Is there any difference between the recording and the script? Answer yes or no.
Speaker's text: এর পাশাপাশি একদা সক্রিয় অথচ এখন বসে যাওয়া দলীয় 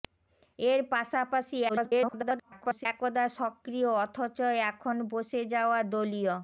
yes